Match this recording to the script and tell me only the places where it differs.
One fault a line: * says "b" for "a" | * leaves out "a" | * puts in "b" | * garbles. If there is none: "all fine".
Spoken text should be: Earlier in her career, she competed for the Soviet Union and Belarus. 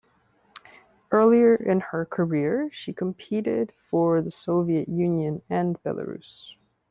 all fine